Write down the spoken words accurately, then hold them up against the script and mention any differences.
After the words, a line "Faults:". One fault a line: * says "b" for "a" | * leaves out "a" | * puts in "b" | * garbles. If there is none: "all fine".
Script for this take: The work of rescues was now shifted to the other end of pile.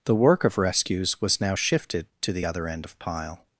The work of rescues was now shifted to the other end of pile.
Faults:
all fine